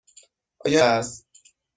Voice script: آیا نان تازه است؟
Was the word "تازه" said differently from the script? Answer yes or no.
yes